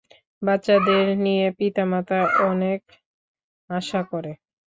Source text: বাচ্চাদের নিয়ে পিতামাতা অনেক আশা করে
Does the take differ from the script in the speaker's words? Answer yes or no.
no